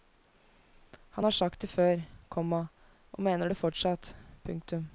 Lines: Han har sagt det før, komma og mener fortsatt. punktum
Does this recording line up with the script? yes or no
no